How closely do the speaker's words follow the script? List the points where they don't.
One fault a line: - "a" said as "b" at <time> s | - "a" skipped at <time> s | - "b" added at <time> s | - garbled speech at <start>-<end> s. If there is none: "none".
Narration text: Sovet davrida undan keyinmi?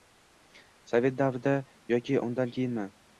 - "yoki" added at 1.9 s